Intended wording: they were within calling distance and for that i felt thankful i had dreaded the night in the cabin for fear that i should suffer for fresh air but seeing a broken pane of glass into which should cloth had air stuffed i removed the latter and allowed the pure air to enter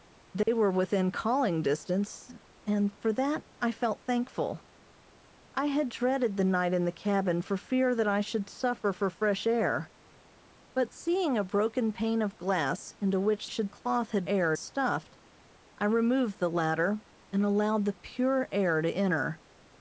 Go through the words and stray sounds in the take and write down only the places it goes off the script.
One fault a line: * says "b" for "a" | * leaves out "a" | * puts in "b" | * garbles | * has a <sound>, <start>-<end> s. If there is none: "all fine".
* has a dropout, 0.4-0.5 s